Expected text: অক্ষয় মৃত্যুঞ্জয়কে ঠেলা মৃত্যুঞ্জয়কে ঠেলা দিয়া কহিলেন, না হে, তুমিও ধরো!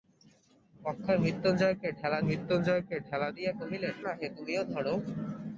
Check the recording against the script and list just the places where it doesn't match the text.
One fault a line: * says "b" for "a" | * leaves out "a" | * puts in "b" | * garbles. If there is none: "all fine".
all fine